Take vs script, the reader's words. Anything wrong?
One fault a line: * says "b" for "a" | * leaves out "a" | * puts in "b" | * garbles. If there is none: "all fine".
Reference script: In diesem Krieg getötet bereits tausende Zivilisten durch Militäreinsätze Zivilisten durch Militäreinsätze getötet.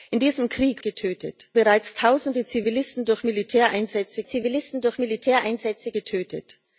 all fine